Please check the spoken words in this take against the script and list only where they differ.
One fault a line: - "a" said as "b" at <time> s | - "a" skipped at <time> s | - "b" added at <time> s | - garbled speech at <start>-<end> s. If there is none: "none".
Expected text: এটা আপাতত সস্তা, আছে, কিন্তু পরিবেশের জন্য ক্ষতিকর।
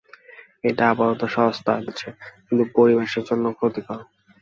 none